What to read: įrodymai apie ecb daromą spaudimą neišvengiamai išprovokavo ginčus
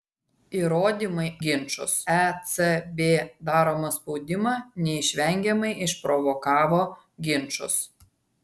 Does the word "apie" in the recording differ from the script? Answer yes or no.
yes